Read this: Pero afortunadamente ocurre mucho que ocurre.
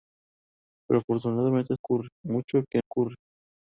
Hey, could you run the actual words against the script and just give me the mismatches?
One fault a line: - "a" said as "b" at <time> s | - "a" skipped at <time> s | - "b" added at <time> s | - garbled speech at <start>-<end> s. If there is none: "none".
none